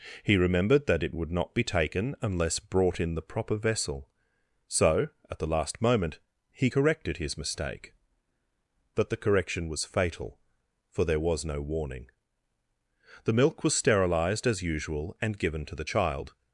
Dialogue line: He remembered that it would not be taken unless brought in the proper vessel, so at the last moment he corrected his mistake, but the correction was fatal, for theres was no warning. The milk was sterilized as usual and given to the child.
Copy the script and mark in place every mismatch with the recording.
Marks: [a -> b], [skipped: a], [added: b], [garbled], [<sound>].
He remembered that it would not be taken unless brought in the proper vessel, so at the last moment he corrected his mistake, but the correction was fatal, for [theres -> there] was no warning. The milk was sterilized as usual and given to the child.